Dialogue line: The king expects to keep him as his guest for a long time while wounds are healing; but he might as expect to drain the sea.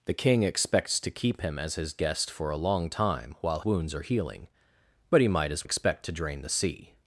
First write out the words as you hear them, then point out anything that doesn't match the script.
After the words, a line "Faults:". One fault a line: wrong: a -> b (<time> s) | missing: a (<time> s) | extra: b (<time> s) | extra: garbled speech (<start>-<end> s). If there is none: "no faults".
The king expects to keep him as his guest for a long time while wounds are healing; but he might as expect to drain the sea.
Faults:
no faults